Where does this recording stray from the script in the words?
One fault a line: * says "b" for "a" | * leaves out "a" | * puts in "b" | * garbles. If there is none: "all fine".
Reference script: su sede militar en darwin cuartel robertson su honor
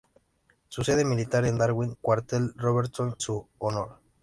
all fine